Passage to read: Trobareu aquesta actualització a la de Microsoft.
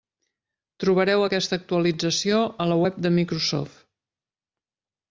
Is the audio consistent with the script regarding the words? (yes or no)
no